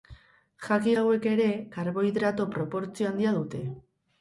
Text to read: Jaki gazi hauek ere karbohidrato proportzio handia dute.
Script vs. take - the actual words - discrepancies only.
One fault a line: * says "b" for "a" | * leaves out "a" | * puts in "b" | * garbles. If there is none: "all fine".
* leaves out "gazi"